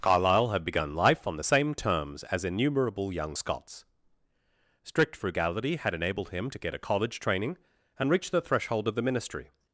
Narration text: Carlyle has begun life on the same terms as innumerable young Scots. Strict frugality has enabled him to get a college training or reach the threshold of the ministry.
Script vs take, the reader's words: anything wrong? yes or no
yes